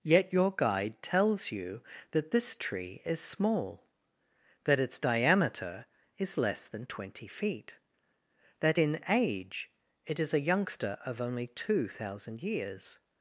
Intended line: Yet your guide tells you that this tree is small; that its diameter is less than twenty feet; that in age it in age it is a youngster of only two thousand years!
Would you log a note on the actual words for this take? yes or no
yes